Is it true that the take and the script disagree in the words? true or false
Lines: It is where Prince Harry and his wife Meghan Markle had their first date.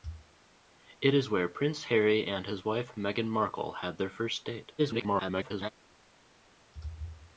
true